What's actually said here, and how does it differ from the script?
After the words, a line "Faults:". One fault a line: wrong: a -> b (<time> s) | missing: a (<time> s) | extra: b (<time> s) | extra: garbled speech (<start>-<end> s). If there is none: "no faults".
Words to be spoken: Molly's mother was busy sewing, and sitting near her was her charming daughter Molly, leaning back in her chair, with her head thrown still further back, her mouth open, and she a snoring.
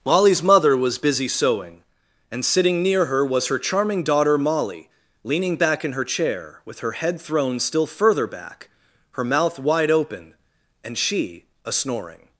Molly's mother was busy sewing, and sitting near her was her charming daughter Molly, leaning back in her chair, with her head thrown still further back, her mouth wide open, and she a snoring.
Faults:
extra: wide (9.6 s)